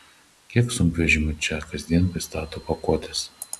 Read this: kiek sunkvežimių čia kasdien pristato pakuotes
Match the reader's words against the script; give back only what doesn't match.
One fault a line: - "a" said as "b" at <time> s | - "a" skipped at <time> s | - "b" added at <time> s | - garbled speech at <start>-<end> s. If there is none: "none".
none